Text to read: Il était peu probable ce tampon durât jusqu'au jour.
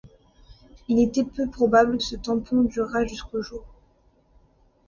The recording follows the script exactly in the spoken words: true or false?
true